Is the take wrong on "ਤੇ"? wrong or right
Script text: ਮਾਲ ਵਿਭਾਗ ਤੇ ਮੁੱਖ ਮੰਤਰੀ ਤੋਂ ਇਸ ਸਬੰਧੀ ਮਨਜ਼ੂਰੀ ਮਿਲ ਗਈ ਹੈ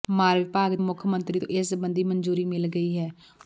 wrong